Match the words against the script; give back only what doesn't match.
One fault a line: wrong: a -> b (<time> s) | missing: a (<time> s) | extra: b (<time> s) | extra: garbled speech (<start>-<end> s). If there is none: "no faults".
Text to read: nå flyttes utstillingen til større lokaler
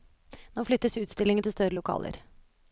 no faults